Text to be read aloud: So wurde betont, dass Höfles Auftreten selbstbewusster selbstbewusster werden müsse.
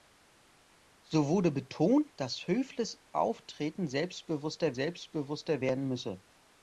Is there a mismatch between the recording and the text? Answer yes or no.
no